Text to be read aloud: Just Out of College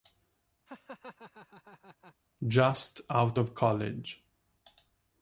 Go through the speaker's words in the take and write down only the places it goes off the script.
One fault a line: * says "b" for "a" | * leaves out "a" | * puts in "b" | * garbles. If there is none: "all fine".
all fine